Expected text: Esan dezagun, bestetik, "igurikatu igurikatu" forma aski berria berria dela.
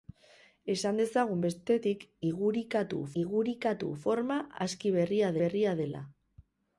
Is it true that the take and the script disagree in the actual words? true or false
false